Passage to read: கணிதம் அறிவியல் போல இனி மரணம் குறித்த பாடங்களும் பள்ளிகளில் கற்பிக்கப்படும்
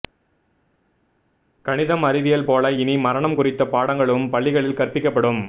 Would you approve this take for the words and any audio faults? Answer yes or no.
yes